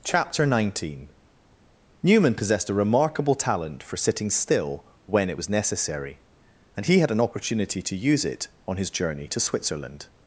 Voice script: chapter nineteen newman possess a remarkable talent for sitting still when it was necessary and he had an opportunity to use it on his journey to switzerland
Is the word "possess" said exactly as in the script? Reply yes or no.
no